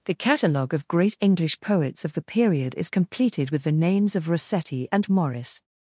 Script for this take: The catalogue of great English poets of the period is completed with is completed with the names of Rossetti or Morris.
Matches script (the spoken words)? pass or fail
fail